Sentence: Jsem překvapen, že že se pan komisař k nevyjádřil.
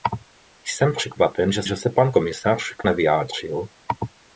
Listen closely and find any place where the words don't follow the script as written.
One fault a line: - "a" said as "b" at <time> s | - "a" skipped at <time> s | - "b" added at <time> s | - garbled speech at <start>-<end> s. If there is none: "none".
none